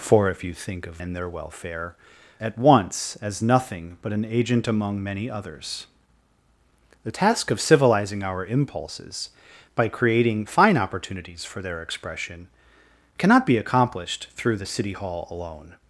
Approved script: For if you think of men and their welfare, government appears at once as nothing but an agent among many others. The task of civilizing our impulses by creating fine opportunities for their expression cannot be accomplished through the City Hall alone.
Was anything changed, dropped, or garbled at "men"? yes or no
yes